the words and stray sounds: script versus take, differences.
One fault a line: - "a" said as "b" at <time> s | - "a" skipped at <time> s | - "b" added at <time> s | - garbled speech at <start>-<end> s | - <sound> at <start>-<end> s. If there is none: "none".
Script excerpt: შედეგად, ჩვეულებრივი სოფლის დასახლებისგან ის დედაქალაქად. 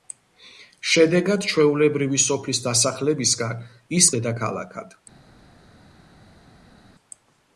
none